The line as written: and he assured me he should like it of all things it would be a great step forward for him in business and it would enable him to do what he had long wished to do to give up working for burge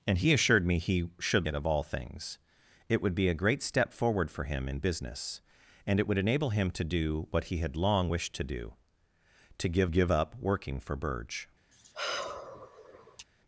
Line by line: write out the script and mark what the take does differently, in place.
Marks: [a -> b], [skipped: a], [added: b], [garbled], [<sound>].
and he assured me he should [skipped: like] it of all things it would be a great step forward for him in business and it would enable him to do what he had long wished to do to give [added: give] up working for burge [sigh]